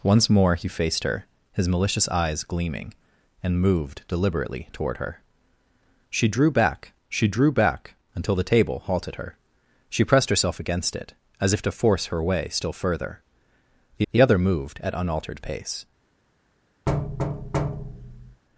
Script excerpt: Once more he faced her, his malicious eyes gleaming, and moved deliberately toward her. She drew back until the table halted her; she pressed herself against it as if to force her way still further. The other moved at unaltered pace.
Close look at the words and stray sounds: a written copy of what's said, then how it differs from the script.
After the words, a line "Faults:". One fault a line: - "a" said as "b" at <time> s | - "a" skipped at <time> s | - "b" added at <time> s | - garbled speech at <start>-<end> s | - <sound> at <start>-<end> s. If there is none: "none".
Once more he faced her, his malicious eyes gleaming, and moved deliberately toward her. She drew back she drew back until the table halted her; she pressed herself against it as if to force her way still further. The the other moved at unaltered pace.
Faults:
- "she drew back" added at 7.1 s
- "the" added at 14.1 s
- thud at 16.9-18.4 s